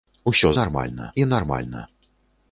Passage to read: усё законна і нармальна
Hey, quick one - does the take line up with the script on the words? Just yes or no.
no